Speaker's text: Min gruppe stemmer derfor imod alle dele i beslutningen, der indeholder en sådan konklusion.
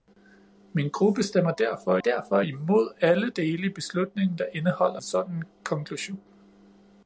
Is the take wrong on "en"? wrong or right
wrong